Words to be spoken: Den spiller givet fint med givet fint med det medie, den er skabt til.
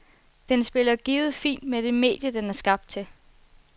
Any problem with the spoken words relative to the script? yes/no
yes